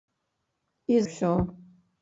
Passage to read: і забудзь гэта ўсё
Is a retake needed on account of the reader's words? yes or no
yes